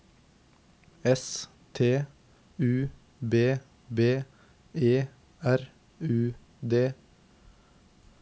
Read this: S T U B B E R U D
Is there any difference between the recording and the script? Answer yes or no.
no